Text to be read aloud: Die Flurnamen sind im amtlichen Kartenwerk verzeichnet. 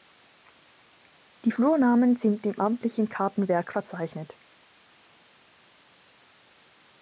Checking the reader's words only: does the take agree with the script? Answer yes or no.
yes